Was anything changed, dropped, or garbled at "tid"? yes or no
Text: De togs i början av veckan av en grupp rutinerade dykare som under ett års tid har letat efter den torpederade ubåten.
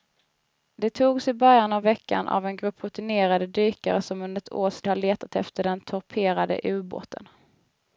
yes